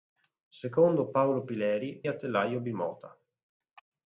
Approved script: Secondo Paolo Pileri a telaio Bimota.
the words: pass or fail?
pass